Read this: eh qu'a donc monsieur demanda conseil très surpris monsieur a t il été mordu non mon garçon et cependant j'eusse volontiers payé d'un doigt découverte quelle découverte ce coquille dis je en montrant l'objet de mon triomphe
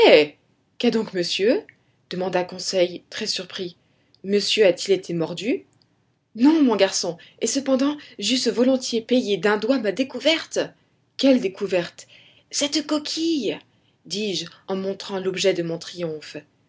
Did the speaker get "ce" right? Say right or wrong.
wrong